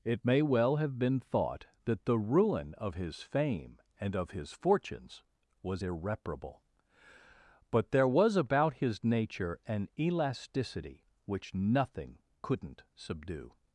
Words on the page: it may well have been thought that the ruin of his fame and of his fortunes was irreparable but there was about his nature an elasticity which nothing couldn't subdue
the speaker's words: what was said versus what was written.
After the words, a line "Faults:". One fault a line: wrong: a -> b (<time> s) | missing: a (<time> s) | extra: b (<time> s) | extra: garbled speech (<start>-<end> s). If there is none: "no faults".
it may well have been thought that the ruin of his fame and of his fortunes was irreparable but there was about his nature an elasticity which nothing couldn't subdue
Faults:
no faults